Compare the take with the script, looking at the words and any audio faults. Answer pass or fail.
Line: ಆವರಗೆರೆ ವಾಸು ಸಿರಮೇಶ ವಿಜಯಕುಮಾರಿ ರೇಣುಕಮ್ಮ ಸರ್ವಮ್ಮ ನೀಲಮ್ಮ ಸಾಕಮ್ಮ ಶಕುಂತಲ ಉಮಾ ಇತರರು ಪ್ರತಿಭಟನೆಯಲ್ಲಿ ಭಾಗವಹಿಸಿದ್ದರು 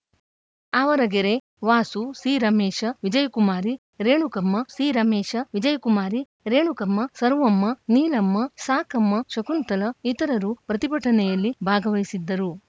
fail